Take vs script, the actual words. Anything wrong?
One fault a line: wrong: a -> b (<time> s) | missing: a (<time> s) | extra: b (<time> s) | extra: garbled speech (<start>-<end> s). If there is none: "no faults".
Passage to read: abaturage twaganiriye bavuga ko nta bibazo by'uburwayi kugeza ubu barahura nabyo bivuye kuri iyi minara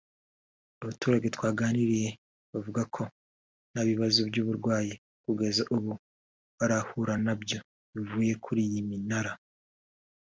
no faults